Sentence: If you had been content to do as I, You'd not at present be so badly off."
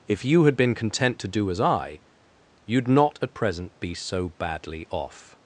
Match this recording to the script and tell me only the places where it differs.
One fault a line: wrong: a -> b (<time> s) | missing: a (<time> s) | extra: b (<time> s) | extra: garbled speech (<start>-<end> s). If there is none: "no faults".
no faults